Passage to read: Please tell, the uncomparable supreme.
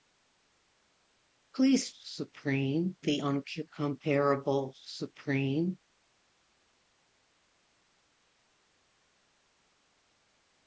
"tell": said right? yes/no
no